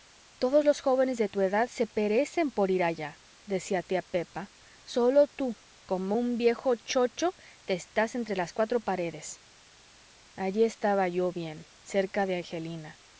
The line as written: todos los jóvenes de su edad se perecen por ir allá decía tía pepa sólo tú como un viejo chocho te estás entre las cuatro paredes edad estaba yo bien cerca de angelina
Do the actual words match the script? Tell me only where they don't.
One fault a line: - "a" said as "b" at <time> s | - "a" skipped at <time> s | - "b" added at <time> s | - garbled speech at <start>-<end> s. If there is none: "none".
- "su" said as "tu" at 1.3 s
- "edad" said as "allí" at 10.4 s